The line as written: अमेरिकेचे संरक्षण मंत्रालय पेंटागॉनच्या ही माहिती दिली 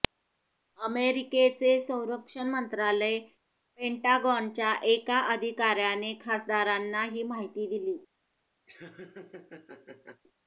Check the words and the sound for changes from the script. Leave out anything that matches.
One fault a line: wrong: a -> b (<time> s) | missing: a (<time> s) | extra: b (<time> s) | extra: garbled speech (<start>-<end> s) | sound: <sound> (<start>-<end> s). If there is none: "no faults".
extra: एका अधिकाऱ्याने खासदारांना (4.8 s)
sound: laugh (8.7-10.2 s)